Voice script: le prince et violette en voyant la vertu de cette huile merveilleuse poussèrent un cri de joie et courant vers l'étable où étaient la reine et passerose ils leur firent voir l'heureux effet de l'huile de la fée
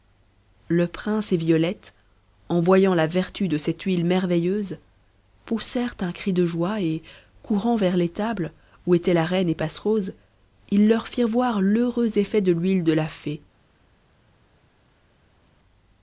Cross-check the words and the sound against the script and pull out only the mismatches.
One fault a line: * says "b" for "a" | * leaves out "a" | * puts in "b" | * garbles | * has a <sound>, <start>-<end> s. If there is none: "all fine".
all fine